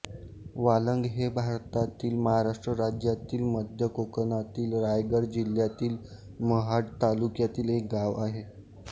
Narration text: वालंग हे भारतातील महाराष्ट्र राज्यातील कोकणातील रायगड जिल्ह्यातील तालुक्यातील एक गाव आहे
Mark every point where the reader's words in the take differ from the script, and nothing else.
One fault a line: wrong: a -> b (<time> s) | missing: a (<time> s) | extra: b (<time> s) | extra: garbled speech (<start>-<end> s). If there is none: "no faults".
extra: मध्य (3.5 s)
extra: महाड (6.4 s)